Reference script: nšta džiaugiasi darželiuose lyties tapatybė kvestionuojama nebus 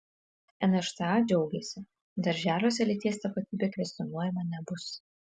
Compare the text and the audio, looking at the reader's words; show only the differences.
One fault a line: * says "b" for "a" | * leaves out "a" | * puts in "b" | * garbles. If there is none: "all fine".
all fine